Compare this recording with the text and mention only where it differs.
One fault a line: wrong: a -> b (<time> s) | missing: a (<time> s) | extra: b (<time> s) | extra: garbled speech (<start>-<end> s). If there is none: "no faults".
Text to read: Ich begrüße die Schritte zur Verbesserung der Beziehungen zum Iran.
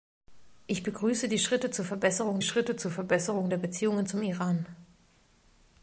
extra: Schritte zur Verbesserung (2.4 s)